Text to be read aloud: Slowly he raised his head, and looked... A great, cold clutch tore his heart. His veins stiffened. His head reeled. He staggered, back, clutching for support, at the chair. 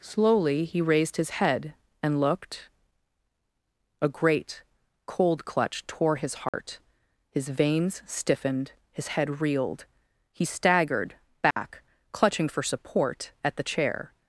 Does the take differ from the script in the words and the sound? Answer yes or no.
yes